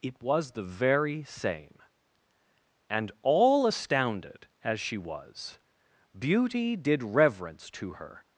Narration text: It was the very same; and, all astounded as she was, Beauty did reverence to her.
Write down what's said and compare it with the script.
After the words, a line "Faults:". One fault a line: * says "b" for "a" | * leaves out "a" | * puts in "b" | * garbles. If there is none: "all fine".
It was the very same; and, all astounded as she was, Beauty did reverence to her.
Faults:
all fine